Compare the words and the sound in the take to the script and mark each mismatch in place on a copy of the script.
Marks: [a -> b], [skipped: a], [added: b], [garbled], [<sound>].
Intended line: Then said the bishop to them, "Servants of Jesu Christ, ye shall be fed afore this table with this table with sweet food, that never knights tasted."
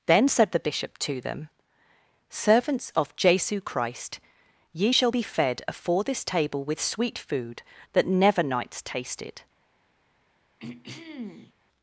Then said the bishop to them, "Servants of Jesu Christ, ye shall be fed afore this table with [skipped: this table with] sweet food, that never knights tasted." [throat clearing]